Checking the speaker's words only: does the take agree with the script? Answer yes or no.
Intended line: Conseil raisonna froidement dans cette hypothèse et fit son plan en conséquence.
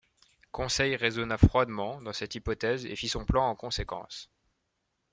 yes